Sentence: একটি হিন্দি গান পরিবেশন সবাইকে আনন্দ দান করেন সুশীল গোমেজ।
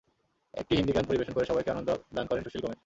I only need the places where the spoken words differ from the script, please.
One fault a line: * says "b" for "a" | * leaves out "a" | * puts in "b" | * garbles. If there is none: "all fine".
* puts in "করে"